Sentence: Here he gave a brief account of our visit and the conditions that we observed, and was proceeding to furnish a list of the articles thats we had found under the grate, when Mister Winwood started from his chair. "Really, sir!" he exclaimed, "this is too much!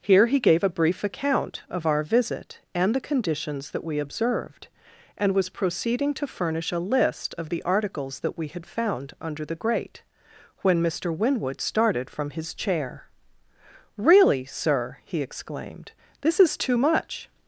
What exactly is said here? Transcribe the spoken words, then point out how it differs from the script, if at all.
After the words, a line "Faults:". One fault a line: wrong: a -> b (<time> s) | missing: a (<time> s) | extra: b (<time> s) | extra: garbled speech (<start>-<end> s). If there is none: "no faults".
Here he gave a brief account of our visit and the conditions that we observed, and was proceeding to furnish a list of the articles that we had found under the grate, when Mister Winwood started from his chair. "Really, sir!" he exclaimed, "this is too much!
Faults:
wrong: thats -> that (8.2 s)